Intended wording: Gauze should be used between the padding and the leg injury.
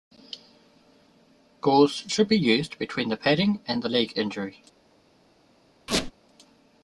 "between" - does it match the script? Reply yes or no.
yes